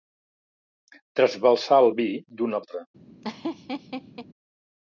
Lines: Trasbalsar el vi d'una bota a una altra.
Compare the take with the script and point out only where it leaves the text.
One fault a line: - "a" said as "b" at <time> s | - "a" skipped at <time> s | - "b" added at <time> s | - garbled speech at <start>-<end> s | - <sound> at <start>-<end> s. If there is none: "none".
- "bota a una" skipped at 2.6 s
- laugh at 3.2-4.3 s